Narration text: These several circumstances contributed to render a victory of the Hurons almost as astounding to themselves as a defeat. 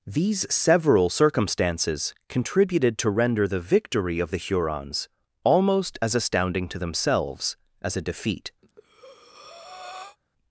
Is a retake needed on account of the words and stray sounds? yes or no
yes